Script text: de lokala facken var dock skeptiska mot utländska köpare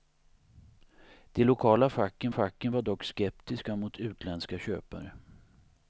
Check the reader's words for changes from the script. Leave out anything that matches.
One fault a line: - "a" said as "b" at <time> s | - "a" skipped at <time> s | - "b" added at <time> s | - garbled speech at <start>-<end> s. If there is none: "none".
- "facken" added at 2.3 s